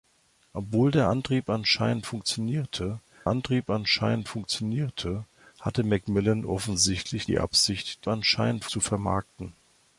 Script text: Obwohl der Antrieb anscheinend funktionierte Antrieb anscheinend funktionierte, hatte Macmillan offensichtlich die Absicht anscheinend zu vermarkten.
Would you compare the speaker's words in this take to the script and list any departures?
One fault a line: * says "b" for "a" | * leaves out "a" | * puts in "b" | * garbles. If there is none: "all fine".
all fine